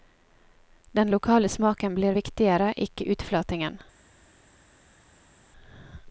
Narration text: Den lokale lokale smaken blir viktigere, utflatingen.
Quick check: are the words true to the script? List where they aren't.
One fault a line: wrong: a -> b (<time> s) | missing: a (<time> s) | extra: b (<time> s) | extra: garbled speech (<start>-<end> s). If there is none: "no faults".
missing: lokale (1.5 s)
extra: ikke (2.8 s)